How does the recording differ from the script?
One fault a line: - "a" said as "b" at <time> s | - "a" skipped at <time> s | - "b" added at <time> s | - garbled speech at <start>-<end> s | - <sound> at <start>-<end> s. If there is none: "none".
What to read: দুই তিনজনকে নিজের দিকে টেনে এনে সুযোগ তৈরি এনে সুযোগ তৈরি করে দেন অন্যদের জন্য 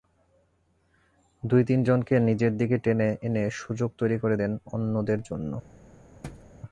- "এনে সুযোগ তৈরি" skipped at 4.2 s
- thud at 6.2-6.5 s